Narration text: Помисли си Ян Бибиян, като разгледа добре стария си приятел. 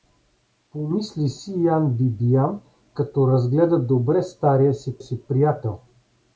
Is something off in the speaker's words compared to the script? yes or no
yes